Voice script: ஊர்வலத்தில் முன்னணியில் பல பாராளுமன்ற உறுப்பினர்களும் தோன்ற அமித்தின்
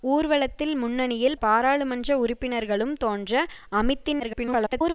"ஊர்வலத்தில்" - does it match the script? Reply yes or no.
yes